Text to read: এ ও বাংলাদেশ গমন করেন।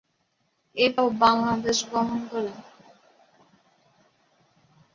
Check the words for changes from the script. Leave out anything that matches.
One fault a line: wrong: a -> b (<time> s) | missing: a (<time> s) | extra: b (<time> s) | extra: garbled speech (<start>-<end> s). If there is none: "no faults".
no faults